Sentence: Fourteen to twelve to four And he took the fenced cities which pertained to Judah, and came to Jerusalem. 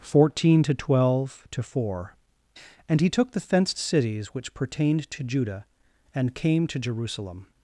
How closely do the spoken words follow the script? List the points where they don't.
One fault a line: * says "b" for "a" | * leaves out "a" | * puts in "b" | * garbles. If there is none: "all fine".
all fine